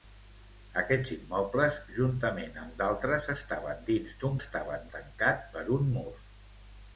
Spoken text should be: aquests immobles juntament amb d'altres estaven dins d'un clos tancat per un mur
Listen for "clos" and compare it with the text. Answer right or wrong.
wrong